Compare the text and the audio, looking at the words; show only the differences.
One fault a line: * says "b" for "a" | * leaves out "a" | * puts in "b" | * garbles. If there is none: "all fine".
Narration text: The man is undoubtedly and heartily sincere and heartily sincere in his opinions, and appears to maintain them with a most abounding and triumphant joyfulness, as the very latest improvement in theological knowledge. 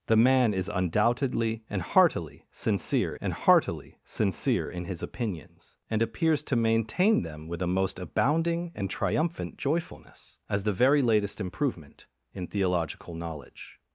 all fine